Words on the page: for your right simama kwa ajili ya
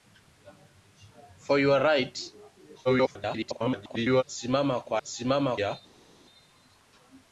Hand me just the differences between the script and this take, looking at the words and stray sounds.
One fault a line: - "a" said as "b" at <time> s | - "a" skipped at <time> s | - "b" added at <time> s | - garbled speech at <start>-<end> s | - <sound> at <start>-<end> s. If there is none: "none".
- garbled speech at 2.8-4.2 s
- "ajili" said as "simama" at 5.0 s